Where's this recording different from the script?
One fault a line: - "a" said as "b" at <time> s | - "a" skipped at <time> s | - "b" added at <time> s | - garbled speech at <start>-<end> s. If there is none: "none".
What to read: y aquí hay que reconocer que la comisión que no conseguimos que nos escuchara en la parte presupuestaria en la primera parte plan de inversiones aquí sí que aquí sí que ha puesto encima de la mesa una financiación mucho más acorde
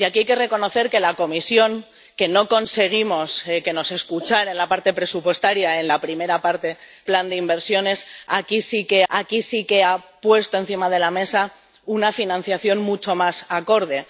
none